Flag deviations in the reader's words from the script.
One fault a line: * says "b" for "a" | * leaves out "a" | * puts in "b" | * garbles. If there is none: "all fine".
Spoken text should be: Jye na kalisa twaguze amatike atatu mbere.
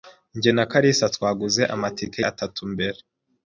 all fine